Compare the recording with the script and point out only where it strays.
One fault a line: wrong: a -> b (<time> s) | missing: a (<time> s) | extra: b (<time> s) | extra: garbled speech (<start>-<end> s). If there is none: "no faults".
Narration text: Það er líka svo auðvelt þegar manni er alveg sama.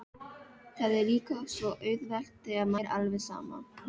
missing: manni (2.7 s)